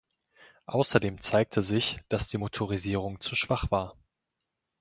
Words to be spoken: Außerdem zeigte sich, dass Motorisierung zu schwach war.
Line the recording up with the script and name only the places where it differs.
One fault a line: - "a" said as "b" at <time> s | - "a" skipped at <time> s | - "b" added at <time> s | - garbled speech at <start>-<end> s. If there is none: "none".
- "die" added at 2.3 s